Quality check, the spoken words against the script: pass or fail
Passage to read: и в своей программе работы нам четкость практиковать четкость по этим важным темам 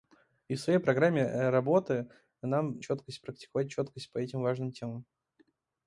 pass